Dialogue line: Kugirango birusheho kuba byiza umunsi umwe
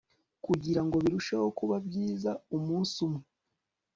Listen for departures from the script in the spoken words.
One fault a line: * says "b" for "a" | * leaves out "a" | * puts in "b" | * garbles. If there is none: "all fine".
all fine